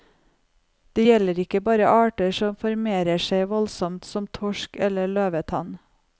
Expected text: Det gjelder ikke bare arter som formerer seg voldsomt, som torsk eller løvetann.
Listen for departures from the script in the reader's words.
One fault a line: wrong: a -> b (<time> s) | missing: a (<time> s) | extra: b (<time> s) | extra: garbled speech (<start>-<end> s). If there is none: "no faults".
no faults